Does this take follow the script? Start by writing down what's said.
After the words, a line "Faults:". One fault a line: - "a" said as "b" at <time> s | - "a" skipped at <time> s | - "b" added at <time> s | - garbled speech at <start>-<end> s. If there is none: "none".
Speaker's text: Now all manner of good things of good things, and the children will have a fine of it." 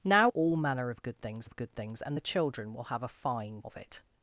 Now all manner of good things of good things, and the children will have a fine of it."
Faults:
none